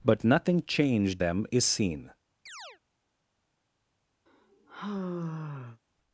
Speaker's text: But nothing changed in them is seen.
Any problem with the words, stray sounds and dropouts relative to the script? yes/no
yes